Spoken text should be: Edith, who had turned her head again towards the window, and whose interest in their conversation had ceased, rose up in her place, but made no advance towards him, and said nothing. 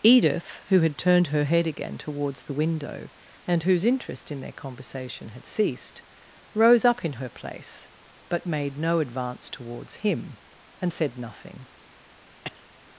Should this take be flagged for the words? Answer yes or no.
no